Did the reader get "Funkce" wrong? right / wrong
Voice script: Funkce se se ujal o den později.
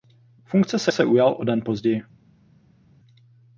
right